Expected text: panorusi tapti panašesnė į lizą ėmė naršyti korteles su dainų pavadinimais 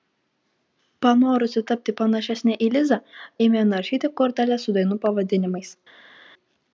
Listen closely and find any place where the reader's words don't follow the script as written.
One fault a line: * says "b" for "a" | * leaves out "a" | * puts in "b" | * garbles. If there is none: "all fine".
all fine